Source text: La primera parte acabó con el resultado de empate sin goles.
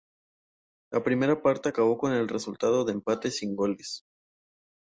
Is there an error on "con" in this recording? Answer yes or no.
no